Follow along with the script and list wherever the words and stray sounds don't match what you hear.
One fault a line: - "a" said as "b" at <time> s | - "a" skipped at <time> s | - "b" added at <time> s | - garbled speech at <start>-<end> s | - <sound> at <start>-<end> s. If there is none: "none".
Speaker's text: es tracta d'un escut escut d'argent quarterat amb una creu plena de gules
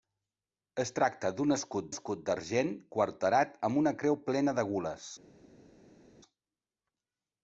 none